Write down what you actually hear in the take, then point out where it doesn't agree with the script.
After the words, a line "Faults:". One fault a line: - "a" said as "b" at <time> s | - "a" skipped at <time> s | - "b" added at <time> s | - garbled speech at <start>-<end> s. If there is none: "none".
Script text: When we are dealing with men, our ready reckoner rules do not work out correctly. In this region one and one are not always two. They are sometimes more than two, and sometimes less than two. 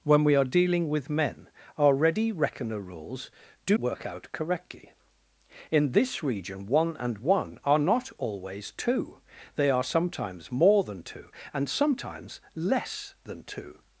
When we are dealing with men, our ready reckoner rules do work out correctly. In this region one and one are not always two. They are sometimes more than two, and sometimes less than two.
Faults:
- "not" skipped at 3.8 s